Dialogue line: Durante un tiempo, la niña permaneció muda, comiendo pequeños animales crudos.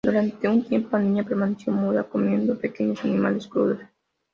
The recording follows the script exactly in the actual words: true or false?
true